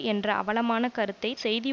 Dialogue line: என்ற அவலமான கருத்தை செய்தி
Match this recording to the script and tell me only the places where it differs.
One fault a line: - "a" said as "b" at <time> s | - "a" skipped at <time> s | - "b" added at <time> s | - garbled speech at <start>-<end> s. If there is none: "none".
none